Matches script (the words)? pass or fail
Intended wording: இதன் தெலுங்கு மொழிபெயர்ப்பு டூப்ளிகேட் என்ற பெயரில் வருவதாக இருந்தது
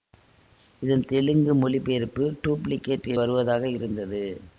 fail